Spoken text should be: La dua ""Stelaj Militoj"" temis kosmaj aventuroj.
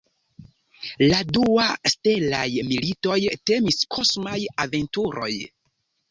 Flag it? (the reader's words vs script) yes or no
no